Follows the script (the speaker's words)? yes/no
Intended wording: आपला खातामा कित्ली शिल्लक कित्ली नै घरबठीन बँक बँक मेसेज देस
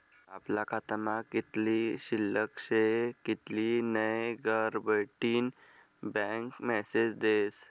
no